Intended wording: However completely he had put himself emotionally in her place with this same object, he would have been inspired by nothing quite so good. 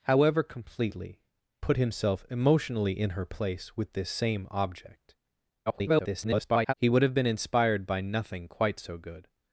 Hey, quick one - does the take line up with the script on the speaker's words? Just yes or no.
no